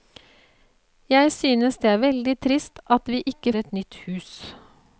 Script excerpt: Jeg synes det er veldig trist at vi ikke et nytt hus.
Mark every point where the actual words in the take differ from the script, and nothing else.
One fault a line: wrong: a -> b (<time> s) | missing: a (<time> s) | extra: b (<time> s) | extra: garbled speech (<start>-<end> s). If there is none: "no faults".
no faults